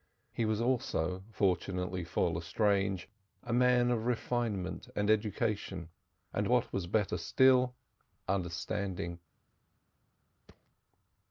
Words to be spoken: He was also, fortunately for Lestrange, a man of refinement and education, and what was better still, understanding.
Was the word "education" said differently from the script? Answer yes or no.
no